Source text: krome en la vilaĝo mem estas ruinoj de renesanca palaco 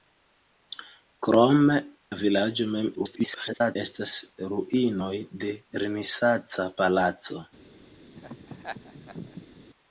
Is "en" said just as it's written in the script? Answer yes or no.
no